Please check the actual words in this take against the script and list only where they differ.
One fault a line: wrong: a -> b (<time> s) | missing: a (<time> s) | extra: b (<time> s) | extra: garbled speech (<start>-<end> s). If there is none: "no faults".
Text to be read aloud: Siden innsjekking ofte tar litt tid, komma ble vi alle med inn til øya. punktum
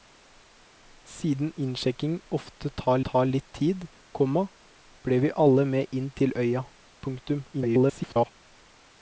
extra: tar (3.1 s)
extra: garbled speech (7.5-8.3 s)